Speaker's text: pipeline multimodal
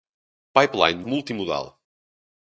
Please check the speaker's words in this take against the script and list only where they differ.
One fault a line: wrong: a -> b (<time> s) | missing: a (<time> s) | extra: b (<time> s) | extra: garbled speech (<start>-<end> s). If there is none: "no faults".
no faults